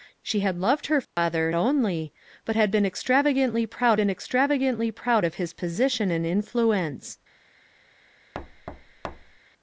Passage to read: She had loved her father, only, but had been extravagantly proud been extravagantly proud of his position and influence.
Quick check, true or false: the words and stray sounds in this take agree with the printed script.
false